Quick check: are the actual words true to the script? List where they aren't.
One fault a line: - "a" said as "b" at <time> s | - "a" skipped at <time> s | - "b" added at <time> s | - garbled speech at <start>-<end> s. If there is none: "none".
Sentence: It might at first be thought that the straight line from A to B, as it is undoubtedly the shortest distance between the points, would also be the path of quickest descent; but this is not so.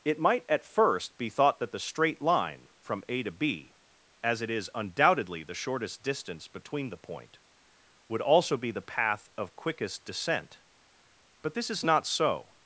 - "points" said as "point" at 7.0 s